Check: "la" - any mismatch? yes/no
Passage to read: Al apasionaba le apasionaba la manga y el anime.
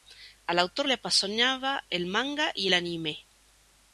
yes